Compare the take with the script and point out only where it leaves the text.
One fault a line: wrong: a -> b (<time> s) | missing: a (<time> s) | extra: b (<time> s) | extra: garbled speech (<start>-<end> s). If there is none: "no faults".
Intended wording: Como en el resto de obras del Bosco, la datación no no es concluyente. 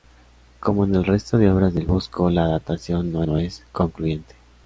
no faults